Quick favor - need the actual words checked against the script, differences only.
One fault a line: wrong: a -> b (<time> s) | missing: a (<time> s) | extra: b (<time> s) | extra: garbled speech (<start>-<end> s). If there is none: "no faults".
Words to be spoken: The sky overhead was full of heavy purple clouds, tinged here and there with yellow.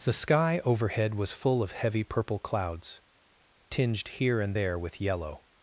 no faults